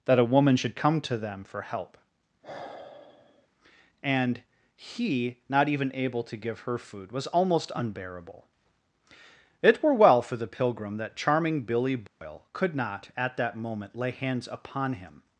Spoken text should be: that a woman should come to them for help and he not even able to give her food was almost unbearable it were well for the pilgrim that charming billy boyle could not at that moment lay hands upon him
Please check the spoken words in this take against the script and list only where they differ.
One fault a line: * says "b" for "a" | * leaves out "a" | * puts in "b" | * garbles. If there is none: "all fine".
all fine